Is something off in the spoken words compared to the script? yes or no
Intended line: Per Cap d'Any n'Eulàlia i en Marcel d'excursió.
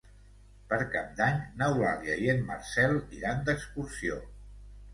yes